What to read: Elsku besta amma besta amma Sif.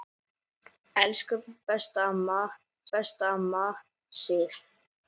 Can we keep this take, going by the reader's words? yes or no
yes